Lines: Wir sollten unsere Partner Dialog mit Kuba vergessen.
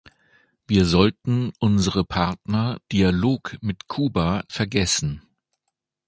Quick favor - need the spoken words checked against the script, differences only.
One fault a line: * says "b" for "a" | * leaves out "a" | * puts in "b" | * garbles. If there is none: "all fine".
all fine